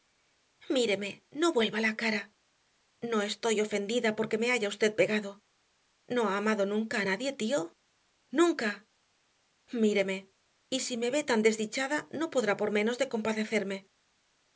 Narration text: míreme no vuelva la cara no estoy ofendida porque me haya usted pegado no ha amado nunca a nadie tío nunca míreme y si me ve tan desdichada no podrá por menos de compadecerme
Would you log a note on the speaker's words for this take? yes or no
no